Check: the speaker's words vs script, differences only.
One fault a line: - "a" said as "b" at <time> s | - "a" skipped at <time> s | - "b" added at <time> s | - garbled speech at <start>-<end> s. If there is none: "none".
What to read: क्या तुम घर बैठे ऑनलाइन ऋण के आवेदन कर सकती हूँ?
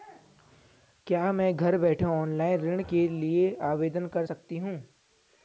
- "तुम" said as "मैं" at 1.3 s
- "लिए" added at 3.1 s